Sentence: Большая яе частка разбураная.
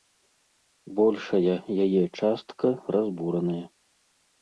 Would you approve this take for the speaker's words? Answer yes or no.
yes